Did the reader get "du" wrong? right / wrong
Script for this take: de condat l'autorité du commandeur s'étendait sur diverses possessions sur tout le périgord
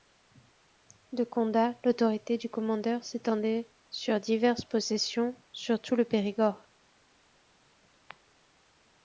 right